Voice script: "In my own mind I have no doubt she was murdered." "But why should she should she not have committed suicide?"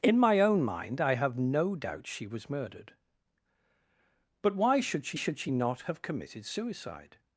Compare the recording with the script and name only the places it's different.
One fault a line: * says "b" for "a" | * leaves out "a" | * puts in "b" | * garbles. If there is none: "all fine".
all fine